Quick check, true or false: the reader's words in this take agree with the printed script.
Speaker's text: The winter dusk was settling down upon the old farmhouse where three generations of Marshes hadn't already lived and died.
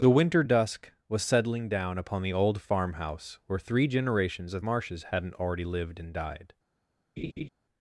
true